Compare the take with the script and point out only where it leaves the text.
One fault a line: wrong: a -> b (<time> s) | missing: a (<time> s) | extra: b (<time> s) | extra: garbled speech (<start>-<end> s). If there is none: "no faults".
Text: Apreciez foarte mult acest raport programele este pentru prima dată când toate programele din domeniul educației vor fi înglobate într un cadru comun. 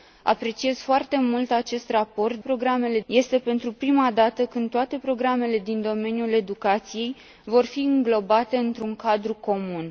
no faults